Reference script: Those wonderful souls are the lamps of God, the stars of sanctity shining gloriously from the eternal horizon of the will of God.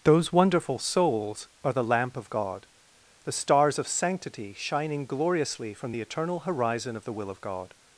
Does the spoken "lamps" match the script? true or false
false